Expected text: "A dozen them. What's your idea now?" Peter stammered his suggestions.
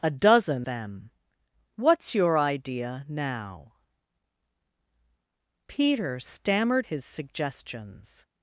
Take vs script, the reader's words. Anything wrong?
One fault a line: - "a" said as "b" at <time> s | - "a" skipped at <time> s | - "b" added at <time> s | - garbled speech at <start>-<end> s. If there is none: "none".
none